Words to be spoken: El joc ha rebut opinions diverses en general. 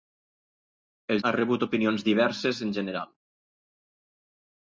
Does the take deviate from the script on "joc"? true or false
true